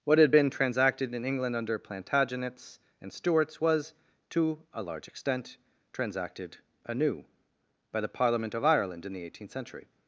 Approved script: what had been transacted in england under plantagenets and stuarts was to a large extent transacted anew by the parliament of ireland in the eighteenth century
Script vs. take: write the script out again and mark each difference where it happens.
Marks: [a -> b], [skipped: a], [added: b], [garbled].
what had been transacted in england under plantagenets and stuarts was to a large extent transacted anew by the parliament of ireland in the eighteenth century